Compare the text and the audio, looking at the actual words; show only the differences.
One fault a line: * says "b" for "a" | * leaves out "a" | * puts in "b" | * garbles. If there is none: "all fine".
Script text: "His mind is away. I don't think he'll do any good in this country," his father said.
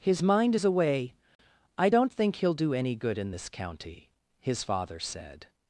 * says "county" for "country"